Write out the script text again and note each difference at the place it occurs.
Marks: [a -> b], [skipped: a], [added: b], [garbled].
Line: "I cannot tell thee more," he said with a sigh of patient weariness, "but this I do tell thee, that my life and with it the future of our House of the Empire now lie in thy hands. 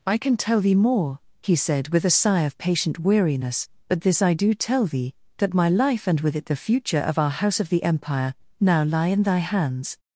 "I [cannot -> can] tell thee more," he said with a sigh of patient weariness, "but this I do tell thee, that my life and with it the future of our House of the Empire now lie in thy hands.